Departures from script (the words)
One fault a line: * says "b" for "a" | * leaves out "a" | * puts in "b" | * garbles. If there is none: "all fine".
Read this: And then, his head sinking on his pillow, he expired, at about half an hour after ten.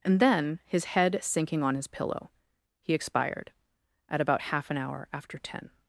all fine